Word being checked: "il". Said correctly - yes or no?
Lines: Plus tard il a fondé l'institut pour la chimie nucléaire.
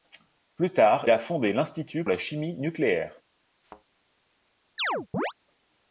no